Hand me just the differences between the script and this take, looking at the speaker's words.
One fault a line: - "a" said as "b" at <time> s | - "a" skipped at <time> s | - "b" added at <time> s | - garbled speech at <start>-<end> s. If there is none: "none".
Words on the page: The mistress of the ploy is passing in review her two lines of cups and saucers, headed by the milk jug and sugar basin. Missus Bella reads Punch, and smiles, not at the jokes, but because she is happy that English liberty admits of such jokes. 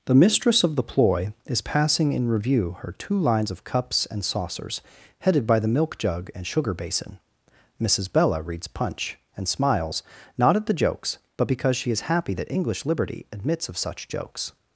none